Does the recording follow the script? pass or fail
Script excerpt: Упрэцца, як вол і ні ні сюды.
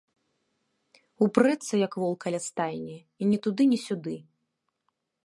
fail